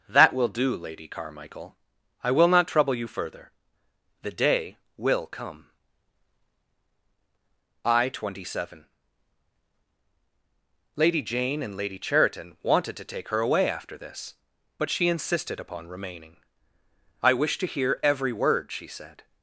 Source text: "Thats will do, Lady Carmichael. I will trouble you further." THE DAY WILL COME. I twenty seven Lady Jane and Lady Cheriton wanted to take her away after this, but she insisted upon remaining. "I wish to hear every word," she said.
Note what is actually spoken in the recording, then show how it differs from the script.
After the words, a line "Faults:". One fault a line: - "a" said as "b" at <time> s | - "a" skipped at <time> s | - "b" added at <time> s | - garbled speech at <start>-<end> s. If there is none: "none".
"That will do, Lady Carmichael. I will not trouble you further." THE DAY WILL COME. I twenty seven Lady Jane and Lady Cheriton wanted to take her away after this, but she insisted upon remaining. "I wish to hear every word," she said.
Faults:
- "Thats" said as "That" at 0.1 s
- "not" added at 2.5 s